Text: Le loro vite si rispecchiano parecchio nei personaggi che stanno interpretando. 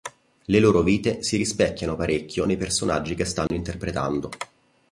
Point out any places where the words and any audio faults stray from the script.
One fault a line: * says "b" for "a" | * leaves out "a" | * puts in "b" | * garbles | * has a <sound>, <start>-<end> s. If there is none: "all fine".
* has a dropout, 3.5-3.5 s